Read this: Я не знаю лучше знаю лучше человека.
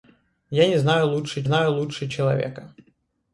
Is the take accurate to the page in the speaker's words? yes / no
yes